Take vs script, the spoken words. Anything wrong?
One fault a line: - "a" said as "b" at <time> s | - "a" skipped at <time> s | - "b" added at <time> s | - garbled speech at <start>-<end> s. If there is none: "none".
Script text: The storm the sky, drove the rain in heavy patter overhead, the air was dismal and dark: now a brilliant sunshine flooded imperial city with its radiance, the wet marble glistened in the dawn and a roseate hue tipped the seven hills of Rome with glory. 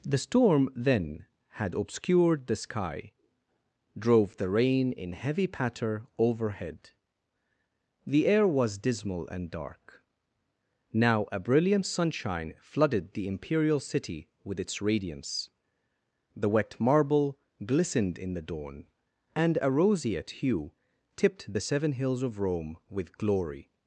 - "then had obscured" added at 0.8 s
- "the" added at 13.1 s